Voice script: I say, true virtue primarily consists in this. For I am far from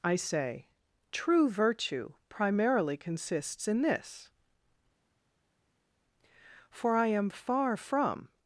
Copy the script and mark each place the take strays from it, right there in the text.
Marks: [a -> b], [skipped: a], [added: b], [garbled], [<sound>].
I say, true virtue primarily consists in this. For I am far from